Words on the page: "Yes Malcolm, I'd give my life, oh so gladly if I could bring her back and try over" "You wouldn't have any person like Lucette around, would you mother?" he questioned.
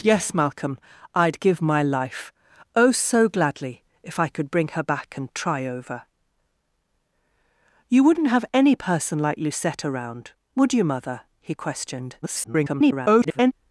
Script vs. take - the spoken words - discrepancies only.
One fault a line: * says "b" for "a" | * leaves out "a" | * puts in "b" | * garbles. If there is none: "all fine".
* garbles